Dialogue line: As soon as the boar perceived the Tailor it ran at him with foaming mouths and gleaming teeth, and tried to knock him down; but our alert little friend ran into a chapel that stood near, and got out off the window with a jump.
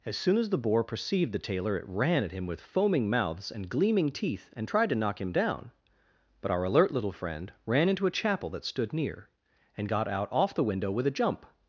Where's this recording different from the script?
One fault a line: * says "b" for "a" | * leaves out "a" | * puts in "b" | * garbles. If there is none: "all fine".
all fine